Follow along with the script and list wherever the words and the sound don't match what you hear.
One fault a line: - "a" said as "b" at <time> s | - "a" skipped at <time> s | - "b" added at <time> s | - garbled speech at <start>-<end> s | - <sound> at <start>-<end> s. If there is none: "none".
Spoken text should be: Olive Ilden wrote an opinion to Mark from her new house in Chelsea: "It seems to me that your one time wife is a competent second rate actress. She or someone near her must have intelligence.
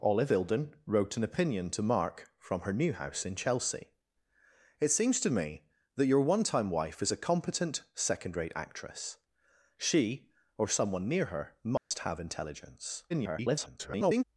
- dropout at 11.8-11.9 s
- garbled speech at 13.1-14.2 s